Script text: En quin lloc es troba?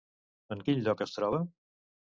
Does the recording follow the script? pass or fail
pass